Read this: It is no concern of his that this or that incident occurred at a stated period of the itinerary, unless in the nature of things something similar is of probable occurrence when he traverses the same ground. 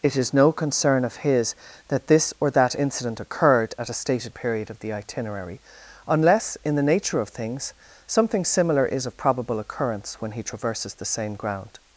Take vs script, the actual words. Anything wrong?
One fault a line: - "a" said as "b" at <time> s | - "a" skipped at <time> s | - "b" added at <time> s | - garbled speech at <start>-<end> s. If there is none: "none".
none